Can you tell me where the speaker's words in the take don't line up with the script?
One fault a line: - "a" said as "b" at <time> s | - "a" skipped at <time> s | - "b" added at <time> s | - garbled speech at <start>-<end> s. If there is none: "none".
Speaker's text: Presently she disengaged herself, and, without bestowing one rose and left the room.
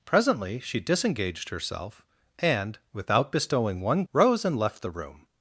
none